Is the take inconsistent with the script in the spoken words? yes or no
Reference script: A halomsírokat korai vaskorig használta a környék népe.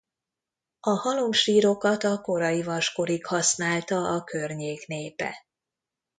yes